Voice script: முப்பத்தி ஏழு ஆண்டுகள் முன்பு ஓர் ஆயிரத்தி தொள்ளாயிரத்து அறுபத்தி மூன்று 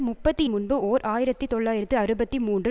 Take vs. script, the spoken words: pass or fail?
fail